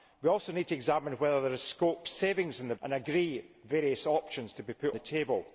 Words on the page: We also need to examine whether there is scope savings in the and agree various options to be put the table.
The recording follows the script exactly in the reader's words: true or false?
true